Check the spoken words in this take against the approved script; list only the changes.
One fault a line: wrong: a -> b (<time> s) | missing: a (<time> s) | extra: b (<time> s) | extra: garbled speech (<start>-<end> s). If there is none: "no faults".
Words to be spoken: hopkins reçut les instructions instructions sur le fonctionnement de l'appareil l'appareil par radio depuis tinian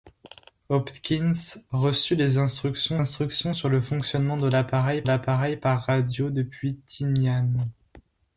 no faults